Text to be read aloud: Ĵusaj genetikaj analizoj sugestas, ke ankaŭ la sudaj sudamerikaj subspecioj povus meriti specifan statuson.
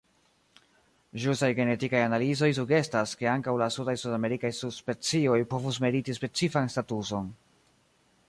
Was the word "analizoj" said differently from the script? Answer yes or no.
no